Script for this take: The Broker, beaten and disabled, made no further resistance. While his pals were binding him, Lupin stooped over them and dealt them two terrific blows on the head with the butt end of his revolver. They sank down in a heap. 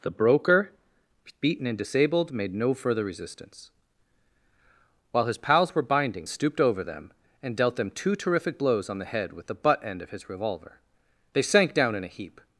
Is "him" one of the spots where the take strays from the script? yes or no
yes